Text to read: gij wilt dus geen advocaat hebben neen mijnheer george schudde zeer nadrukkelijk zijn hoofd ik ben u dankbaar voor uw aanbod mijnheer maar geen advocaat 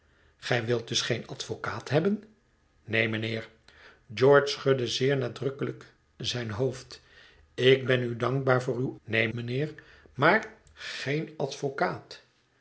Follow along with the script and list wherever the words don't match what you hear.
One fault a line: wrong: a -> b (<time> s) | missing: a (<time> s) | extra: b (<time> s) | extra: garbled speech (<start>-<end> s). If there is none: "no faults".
wrong: aanbod -> neen (9.0 s)